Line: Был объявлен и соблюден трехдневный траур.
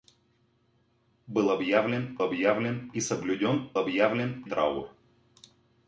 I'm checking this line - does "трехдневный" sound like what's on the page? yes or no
no